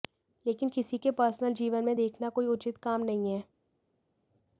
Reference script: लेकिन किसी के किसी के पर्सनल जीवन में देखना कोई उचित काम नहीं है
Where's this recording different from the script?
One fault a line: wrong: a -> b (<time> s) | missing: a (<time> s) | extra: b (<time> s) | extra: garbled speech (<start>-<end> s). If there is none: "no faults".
missing: किसी के (1.1 s)